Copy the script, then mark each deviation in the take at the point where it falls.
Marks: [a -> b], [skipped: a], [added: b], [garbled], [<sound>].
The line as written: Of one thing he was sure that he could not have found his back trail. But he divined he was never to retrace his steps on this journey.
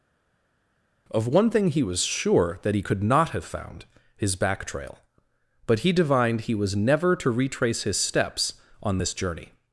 Of one thing he was sure that he could not have found his back trail. But he divined he was never to retrace his steps on this journey.